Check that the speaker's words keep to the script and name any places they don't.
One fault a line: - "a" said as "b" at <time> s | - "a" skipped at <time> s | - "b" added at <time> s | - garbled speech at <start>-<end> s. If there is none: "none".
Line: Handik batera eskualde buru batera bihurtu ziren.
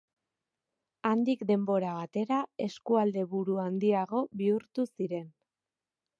- "denbora" added at 1.5 s
- "batera" said as "handiago" at 3.6 s